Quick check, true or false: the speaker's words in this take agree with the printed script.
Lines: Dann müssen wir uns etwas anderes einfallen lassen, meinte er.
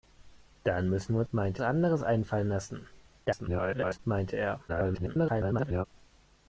false